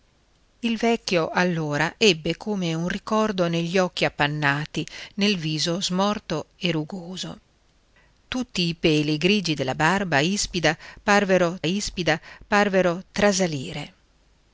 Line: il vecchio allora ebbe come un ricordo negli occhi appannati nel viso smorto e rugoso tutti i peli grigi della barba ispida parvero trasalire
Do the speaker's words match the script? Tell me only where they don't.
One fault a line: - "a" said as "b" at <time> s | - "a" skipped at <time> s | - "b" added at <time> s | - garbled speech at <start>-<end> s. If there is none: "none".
- "ispida parvero" added at 11.6 s